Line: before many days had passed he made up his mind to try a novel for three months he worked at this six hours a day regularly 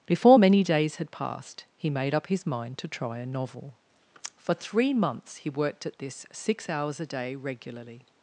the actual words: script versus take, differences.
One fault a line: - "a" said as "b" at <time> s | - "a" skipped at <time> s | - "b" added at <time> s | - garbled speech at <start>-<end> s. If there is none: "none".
none